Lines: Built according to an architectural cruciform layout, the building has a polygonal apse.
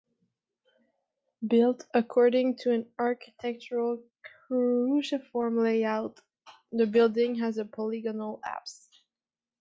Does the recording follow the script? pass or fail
pass